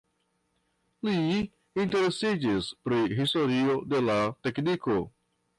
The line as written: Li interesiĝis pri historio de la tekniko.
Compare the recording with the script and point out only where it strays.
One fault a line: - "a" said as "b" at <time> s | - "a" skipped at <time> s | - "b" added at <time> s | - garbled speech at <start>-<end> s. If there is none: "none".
none